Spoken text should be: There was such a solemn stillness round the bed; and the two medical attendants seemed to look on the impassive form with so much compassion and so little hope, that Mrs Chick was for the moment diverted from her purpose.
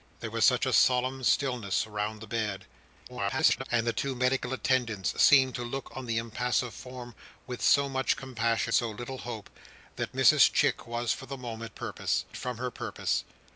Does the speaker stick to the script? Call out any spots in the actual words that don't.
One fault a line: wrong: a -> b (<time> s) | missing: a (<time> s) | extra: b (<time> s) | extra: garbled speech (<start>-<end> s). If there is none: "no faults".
extra: garbled speech (3.1-3.6 s)
missing: and (8.7 s)
wrong: diverted -> purpose (11.7 s)